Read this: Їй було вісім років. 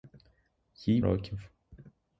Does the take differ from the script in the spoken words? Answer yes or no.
yes